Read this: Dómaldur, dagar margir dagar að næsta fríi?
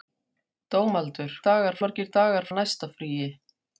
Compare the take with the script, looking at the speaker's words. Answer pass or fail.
pass